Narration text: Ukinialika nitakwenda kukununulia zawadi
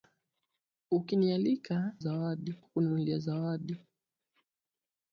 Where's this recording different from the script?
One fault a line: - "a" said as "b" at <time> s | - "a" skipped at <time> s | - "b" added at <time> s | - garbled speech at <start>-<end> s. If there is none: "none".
- "nitakwenda" said as "zawadi" at 2.0 s